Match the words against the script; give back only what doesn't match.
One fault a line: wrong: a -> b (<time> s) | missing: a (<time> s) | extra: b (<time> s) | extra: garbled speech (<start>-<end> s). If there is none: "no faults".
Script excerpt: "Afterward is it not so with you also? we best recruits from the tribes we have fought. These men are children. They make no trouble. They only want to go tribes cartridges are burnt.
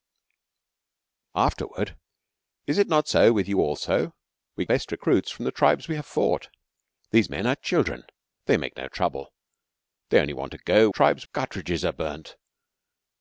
no faults